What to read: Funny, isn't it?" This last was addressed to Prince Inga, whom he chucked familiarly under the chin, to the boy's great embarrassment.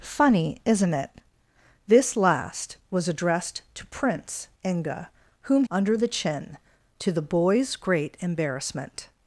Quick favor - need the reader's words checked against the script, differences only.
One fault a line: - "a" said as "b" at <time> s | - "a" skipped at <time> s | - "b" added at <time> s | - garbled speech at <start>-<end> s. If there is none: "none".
- "he chucked familiarly" skipped at 5.7 s